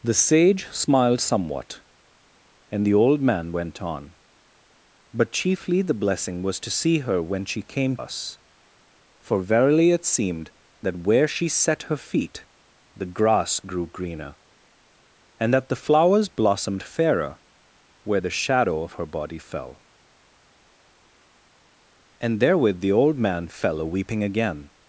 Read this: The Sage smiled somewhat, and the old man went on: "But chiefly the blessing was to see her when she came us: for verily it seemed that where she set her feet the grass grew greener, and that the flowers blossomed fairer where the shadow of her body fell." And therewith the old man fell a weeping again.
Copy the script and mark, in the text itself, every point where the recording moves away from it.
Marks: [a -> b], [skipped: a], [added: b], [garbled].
The Sage smiled somewhat, and the old man went on: "But chiefly the blessing was to see her when she came us: for verily it seemed that where she set her feet the grass grew greener, and that the flowers blossomed fairer where the shadow of her body fell." And therewith the old man fell a weeping again.